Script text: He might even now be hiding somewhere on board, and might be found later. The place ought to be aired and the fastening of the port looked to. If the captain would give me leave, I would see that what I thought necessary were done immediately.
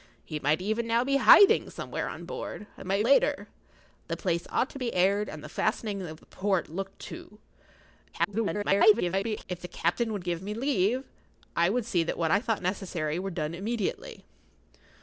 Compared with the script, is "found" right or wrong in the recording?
wrong